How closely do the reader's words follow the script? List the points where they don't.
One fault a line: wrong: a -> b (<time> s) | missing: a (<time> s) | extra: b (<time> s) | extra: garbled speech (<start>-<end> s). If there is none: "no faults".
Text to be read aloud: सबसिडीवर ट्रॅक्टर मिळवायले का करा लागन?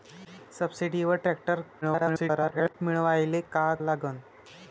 extra: garbled speech (1.8-2.7 s)
missing: करा (3.7 s)